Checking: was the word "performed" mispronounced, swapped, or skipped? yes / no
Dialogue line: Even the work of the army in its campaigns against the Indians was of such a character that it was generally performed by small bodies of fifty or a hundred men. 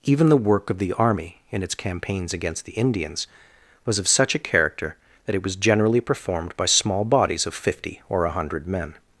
no